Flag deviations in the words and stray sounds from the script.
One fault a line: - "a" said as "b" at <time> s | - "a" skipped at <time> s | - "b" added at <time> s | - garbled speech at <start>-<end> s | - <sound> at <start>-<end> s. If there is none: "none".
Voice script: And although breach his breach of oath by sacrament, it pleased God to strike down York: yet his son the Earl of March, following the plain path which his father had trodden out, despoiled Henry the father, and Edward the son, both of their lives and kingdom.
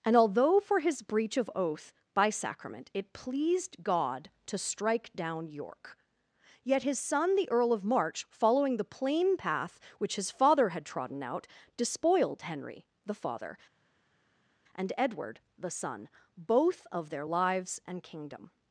- "breach" said as "for" at 0.6 s